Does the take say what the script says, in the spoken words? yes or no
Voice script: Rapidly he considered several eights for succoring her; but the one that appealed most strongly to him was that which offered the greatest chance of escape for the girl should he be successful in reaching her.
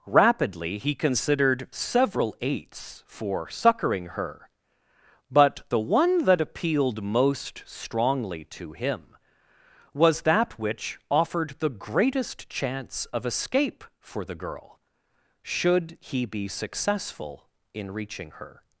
yes